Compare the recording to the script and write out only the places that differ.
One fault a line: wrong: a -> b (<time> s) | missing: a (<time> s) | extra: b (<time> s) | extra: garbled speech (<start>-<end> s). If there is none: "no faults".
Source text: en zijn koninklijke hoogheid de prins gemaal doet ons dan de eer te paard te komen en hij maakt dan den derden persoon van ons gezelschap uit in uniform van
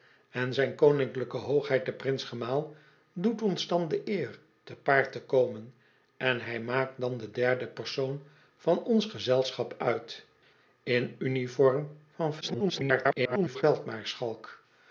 extra: garbled speech (12.4-13.6 s)